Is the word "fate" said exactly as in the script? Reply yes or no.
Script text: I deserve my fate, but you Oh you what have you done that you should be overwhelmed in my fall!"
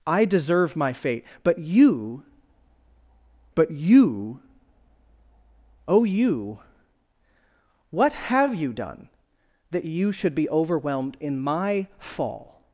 yes